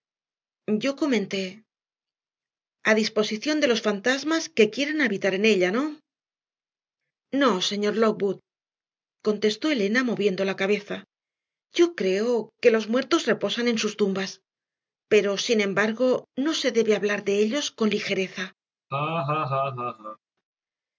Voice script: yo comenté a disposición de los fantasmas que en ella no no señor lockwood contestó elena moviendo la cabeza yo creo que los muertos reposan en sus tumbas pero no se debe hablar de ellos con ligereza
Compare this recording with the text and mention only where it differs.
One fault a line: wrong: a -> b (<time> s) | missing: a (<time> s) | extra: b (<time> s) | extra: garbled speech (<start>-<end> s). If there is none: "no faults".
extra: quieran habitar (4.8 s)
extra: sin embargo (15.5 s)